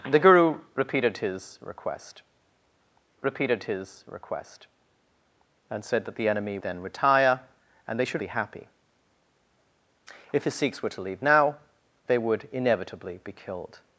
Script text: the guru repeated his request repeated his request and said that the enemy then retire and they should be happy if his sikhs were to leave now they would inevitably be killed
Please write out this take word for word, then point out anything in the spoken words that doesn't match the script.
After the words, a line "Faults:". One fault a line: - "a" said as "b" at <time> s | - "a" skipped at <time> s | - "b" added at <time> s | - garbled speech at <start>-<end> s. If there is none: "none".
the guru repeated his request repeated his request and said that the enemy then retire and they should be happy if his sikhs were to leave now they would inevitably be killed
Faults:
none